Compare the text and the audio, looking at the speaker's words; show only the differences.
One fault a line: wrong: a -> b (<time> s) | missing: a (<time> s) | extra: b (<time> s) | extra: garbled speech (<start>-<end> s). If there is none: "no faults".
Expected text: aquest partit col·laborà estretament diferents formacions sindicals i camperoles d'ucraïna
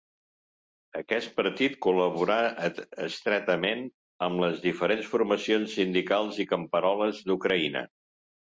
extra: amb les (4.3 s)